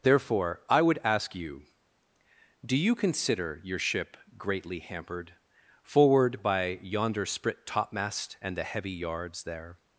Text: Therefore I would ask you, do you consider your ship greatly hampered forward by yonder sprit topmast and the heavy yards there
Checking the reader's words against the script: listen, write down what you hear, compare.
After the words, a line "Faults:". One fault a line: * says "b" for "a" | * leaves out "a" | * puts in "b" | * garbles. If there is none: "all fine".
Therefore I would ask you, do you consider your ship greatly hampered forward by yonder sprit topmast and the heavy yards there
Faults:
all fine